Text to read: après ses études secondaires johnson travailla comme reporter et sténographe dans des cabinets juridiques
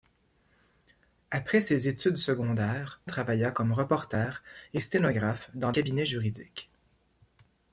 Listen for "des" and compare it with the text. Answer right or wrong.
wrong